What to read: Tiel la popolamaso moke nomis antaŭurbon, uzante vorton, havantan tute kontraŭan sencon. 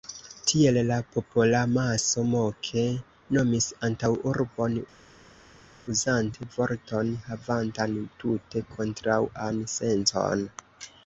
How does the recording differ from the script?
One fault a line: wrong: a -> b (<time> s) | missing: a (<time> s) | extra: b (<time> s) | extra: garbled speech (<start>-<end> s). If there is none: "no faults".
no faults